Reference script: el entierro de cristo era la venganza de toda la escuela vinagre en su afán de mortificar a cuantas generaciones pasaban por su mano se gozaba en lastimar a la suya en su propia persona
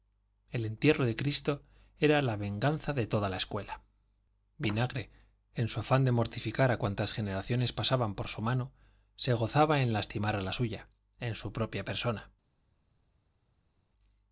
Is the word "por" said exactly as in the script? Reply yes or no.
yes